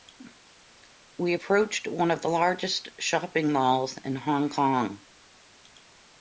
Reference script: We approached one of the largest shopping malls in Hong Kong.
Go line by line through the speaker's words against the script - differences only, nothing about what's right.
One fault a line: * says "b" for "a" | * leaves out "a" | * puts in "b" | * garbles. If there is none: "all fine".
all fine